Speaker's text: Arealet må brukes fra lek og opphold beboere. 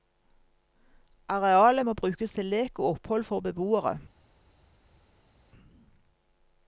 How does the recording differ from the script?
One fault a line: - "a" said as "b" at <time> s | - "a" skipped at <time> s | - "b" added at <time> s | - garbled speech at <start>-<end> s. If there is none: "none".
- "fra" said as "til" at 2.3 s
- "for" added at 3.2 s